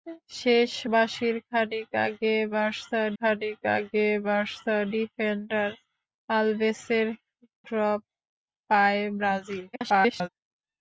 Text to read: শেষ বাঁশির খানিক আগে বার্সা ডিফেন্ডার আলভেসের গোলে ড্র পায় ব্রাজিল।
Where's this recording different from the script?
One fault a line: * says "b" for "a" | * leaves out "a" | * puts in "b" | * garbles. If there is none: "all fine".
* puts in "খানিক আগে বার্সা"
* leaves out "গোলে"
* garbles